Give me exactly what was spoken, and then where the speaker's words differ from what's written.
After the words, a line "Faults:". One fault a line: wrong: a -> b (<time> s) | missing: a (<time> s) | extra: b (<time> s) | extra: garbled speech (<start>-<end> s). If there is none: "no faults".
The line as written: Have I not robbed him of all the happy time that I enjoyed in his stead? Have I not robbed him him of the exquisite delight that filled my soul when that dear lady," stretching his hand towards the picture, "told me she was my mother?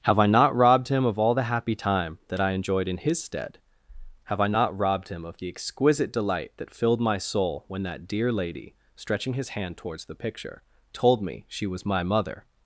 Have I not robbed him of all the happy time that I enjoyed in his stead? Have I not robbed him of the exquisite delight that filled my soul when that dear lady," stretching his hand towards the picture, "told me she was my mother?
Faults:
missing: him (5.2 s)